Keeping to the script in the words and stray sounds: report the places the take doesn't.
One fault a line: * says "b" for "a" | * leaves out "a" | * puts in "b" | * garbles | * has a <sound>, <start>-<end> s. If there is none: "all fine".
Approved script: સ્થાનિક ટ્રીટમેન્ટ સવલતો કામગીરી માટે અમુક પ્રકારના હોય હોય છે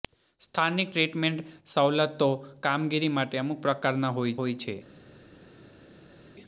all fine